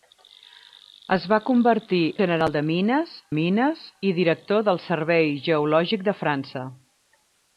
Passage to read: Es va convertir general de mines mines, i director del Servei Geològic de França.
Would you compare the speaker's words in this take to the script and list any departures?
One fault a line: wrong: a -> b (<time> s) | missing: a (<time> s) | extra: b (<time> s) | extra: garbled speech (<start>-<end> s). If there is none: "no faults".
no faults